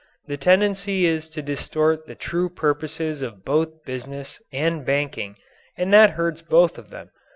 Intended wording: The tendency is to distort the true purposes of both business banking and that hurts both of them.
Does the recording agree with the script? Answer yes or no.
no